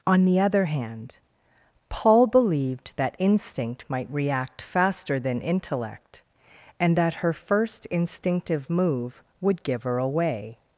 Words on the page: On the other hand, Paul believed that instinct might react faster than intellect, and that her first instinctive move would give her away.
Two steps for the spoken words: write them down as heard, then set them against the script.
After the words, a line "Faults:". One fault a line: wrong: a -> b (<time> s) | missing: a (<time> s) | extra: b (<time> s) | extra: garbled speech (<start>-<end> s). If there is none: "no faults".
On the other hand, Paul believed that instinct might react faster than intellect, and that her first instinctive move would give her away.
Faults:
no faults